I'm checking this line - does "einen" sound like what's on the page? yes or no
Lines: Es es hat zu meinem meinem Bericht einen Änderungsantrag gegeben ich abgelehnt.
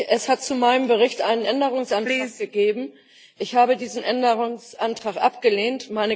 yes